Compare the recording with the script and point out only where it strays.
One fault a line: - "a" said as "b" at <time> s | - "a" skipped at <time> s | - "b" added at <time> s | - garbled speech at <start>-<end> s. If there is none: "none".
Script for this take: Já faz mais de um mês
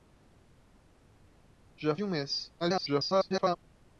- "faz mais" skipped at 2.0 s
- garbled speech at 2.6-3.6 s